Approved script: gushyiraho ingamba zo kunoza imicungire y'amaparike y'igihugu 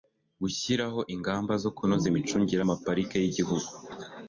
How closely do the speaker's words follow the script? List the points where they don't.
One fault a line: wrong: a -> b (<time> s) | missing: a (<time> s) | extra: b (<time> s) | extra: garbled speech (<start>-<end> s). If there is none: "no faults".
no faults